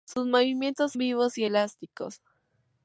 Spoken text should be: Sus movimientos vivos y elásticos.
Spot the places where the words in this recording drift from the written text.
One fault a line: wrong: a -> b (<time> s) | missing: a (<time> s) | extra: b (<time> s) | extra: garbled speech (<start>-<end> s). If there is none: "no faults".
no faults